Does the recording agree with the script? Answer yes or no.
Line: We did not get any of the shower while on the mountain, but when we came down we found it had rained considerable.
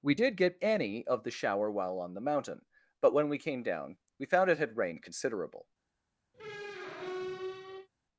no